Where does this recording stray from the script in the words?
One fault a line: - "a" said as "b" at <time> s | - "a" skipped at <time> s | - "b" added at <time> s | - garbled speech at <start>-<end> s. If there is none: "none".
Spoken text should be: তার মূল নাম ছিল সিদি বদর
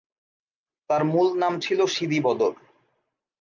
none